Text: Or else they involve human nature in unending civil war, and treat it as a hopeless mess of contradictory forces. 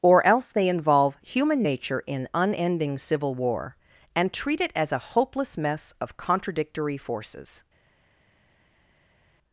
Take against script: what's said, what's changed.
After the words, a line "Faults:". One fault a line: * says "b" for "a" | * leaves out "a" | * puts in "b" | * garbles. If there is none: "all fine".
Or else they involve human nature in unending civil war, and treat it as a hopeless mess of contradictory forces.
Faults:
all fine